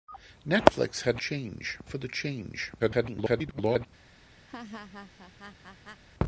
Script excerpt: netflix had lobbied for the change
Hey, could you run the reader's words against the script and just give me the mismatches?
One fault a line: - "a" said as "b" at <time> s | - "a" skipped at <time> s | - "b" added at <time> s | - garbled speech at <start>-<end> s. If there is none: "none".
- "lobbied" said as "change" at 1.2 s
- garbled speech at 2.8-3.9 s